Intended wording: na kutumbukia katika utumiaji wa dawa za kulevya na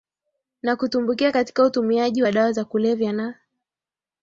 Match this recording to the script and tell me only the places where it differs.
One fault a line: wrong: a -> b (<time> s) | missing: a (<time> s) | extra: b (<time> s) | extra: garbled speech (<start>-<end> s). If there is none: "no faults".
no faults